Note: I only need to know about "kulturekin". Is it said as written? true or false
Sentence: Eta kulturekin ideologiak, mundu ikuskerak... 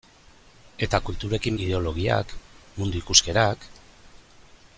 true